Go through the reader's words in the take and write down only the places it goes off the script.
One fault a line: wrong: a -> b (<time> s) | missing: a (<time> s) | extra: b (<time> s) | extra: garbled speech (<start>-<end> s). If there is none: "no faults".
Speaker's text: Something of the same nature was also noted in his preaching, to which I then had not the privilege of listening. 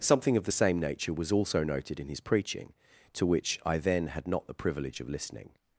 no faults